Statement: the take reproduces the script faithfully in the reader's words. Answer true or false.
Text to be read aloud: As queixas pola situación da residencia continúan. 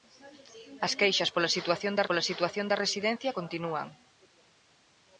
false